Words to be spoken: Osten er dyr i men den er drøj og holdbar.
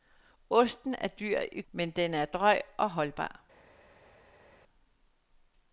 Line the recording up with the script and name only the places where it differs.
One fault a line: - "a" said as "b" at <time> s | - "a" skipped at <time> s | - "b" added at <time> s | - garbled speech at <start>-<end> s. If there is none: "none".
none